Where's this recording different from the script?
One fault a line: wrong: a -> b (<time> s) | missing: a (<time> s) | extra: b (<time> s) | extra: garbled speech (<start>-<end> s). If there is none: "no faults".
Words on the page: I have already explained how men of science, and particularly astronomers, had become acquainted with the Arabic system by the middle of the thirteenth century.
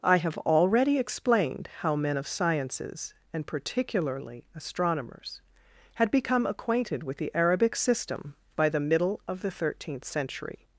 wrong: science -> sciences (2.3 s)